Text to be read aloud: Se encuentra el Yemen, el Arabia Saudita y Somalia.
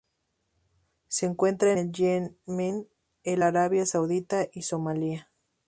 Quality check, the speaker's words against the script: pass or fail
pass